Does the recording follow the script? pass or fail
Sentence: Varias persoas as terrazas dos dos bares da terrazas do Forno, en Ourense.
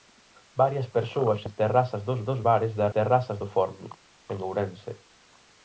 pass